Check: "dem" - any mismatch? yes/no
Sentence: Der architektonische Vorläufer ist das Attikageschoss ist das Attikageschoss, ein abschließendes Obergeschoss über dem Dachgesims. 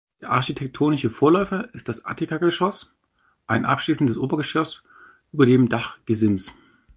no